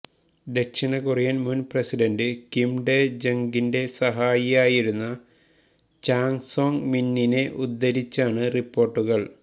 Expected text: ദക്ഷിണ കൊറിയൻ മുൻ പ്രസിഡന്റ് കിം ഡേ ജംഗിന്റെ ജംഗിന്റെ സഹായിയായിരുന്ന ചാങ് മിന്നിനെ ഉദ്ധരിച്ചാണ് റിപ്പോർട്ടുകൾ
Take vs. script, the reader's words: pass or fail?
fail